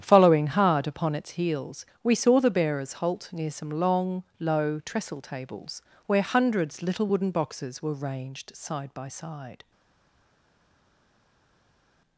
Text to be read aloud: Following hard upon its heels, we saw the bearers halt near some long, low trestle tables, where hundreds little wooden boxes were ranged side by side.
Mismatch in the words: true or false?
false